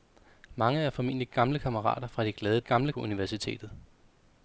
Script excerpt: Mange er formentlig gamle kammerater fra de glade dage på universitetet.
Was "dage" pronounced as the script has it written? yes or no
no